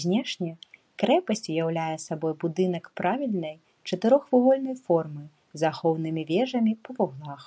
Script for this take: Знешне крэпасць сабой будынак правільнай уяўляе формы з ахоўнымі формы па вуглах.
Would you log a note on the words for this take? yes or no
yes